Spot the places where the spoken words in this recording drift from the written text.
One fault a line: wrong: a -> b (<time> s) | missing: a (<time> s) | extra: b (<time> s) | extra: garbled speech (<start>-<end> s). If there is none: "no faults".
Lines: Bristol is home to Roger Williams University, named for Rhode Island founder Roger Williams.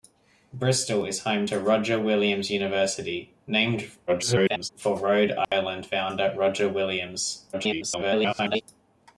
extra: garbled speech (4.1-4.7 s)
extra: garbled speech (7.5-8.6 s)